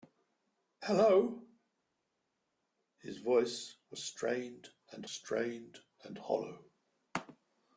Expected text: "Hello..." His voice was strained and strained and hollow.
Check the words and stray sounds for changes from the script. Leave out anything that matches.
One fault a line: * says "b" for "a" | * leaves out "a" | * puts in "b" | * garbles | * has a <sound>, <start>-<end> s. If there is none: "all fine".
all fine